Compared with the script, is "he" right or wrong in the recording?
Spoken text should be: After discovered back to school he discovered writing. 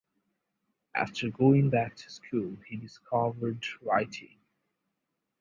right